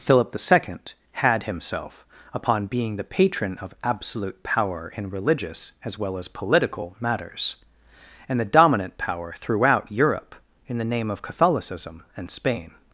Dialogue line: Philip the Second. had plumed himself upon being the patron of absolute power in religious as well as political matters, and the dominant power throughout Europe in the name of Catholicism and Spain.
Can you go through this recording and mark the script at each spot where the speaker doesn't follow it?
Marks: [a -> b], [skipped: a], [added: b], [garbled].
Philip the Second. had [skipped: plumed] himself upon being the patron of absolute power in religious as well as political matters, and the dominant power throughout Europe in the name of Catholicism and Spain.